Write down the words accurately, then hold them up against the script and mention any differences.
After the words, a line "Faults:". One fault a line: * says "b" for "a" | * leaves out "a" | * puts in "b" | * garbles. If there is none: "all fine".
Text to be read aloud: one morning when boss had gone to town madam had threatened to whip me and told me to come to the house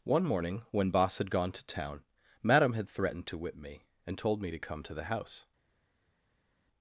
one morning when boss had gone to town madam had threatened to whip me and told me to come to the house
Faults:
all fine